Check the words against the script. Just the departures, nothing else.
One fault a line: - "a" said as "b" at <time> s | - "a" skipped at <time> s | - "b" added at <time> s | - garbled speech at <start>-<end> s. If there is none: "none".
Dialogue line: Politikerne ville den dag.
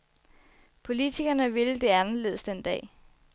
- "det anderledes" added at 1.8 s